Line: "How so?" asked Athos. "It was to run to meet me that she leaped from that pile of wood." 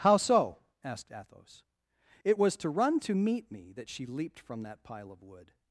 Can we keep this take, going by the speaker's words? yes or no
yes